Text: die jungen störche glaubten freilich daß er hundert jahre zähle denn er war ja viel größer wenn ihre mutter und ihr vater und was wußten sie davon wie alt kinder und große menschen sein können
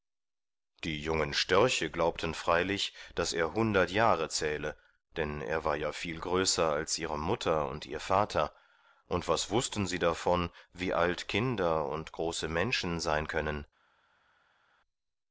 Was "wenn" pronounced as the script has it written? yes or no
no